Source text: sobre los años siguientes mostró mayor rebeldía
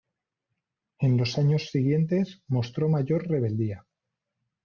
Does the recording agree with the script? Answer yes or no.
no